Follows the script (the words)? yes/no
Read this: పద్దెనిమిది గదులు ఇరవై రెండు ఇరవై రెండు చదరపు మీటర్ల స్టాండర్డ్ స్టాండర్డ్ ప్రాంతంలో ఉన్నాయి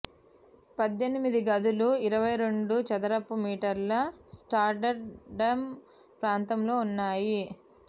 no